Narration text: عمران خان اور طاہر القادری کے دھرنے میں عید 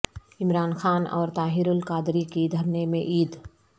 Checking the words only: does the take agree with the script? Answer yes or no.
no